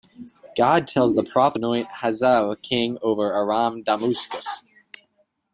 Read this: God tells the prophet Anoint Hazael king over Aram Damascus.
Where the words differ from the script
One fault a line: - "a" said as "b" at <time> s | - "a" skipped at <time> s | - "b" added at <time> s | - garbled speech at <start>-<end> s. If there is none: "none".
none